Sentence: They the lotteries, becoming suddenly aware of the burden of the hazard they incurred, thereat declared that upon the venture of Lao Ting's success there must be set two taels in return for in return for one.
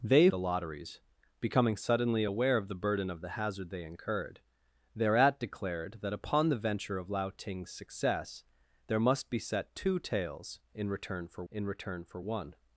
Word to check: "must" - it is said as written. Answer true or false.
true